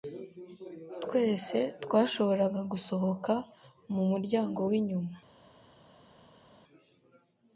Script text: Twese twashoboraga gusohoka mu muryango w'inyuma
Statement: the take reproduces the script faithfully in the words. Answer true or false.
true